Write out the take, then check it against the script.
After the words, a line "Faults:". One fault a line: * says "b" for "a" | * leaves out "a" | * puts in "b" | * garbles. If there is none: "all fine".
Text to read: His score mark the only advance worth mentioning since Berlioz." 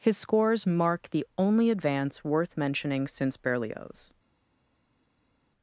His scores mark the only advance worth mentioning since Berlioz."
Faults:
* says "scores" for "score"